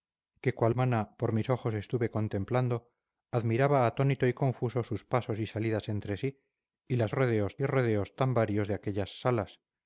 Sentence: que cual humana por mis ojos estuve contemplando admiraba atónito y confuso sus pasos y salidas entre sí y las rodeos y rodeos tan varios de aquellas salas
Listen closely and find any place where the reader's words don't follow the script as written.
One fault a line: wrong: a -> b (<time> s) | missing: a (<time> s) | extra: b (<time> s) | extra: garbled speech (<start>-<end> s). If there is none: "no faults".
no faults